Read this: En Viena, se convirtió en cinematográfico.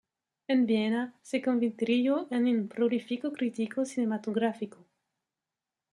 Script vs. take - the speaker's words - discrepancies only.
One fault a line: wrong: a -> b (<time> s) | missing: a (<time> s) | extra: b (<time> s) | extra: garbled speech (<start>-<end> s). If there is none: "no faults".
extra: un prolífico crítico (2.5 s)